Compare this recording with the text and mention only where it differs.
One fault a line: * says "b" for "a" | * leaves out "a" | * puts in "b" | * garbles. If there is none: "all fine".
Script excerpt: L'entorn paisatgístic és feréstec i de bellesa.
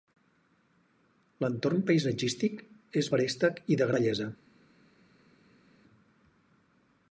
all fine